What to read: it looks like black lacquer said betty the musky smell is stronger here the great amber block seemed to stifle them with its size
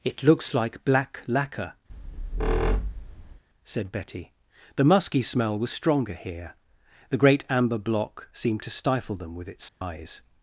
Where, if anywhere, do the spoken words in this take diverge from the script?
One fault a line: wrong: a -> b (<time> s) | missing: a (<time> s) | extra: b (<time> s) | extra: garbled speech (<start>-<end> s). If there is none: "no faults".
wrong: is -> was (5.6 s)